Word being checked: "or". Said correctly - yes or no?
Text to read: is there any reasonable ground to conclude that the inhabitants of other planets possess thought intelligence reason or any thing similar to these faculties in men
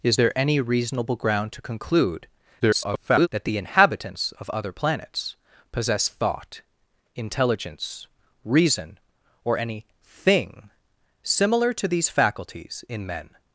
yes